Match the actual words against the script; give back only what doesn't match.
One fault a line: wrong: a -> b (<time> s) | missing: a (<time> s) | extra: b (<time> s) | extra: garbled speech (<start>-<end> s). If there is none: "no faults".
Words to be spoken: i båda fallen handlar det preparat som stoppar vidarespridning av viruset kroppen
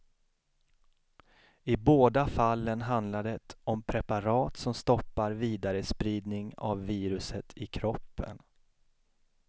extra: om (3.6 s)
extra: i (7.5 s)